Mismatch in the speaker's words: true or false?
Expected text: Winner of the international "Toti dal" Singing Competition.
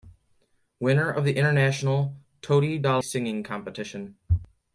false